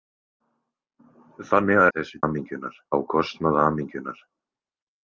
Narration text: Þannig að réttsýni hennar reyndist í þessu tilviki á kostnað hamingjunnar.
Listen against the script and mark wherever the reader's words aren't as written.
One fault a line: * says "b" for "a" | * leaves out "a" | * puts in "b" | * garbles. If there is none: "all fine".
* leaves out "réttsýni hennar reyndist"
* says "hamingjunnar" for "tilviki"